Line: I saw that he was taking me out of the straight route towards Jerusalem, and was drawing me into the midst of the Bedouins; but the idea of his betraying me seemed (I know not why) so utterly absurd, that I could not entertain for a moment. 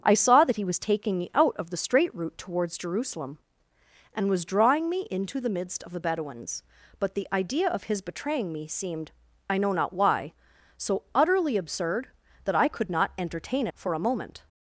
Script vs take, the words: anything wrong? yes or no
no